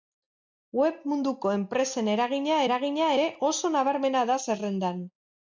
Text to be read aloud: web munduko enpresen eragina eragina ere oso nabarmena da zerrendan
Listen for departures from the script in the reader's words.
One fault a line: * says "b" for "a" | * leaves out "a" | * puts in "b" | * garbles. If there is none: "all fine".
all fine